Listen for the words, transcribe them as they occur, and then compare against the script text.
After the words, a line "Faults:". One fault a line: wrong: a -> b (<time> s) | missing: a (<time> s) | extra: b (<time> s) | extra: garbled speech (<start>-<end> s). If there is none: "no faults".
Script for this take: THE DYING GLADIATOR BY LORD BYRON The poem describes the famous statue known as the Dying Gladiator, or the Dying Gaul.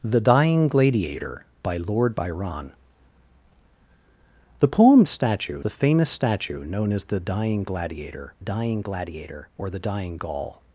THE DYING GLADIATOR BY LORD BYRON The poem statue the famous statue known as the Dying Gladiator Dying Gladiator, or the Dying Gaul.
Faults:
wrong: describes -> statue (5.1 s)
extra: Dying Gladiator (8.4 s)